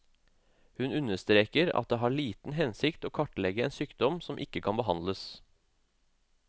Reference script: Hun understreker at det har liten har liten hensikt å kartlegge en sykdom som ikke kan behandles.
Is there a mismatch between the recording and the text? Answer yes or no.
yes